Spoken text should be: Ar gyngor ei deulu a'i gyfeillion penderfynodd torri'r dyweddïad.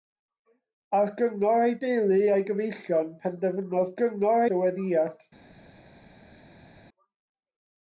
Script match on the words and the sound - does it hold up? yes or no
no